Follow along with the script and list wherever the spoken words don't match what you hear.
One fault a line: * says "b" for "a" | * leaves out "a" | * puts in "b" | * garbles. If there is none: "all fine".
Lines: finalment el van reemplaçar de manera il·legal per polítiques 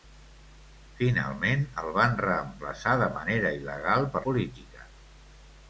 all fine